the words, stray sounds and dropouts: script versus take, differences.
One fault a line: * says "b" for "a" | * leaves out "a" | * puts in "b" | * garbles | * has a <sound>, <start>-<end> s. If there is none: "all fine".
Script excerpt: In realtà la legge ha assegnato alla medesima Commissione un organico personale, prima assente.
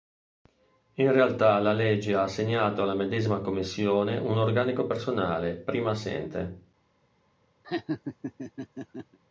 * has a laugh, 7.6-9.2 s